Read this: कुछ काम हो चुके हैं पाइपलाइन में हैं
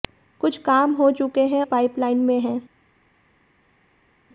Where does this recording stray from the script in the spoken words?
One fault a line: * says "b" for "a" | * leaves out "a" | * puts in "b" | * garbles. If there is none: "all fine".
all fine